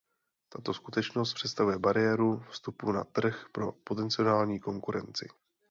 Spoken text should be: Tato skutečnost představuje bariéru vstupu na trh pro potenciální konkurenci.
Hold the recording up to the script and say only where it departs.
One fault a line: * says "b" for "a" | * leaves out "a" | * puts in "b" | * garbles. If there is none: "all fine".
all fine